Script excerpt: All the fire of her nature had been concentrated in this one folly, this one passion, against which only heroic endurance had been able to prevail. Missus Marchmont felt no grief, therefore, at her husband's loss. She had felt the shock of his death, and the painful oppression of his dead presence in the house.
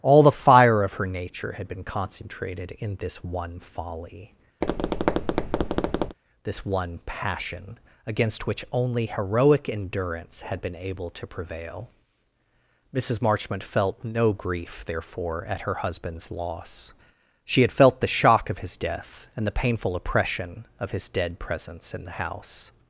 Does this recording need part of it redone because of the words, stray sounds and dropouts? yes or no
yes